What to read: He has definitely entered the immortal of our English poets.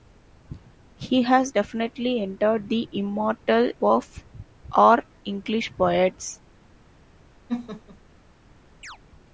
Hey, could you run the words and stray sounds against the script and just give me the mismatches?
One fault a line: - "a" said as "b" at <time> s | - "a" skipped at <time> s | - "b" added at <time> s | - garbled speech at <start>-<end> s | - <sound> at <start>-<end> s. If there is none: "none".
- laugh at 7.5-8.0 s
- chirp at 8.8-9.0 s